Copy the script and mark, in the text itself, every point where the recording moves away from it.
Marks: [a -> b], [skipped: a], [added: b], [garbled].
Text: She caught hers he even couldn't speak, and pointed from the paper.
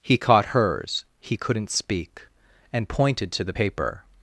[She -> He] caught hers he [skipped: even] couldn't speak, and pointed [from -> to] the paper.